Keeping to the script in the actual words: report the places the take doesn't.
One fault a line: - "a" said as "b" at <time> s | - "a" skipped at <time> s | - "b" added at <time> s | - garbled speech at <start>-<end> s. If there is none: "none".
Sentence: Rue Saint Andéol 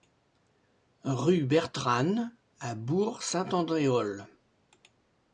- "Bertranne à Bourg" added at 1.4 s